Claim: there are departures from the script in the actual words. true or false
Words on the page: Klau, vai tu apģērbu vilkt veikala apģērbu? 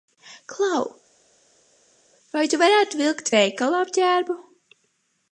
true